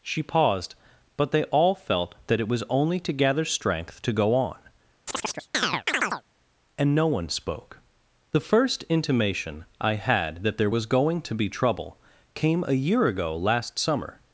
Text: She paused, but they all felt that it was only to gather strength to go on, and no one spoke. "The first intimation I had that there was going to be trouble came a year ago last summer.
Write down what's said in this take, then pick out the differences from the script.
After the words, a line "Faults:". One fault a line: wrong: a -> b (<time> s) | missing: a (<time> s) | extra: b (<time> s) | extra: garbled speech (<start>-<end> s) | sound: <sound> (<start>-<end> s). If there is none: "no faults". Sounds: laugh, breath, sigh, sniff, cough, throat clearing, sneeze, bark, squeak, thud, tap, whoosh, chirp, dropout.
She paused, but they all felt that it was only to gather strength to go on, and no one spoke. "The first intimation I had that there was going to be trouble came a year ago last summer.
Faults:
sound: chirp (5.1-6.2 s)